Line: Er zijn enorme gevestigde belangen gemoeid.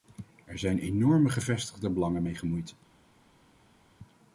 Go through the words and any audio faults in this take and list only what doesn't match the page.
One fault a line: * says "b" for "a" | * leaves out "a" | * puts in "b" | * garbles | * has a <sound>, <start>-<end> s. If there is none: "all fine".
* puts in "mee"